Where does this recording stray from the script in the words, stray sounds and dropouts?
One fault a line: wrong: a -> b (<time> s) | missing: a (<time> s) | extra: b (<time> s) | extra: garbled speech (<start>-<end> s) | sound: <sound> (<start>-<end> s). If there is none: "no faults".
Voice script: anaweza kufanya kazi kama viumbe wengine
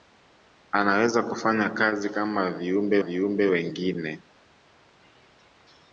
extra: viumbe (3.0 s)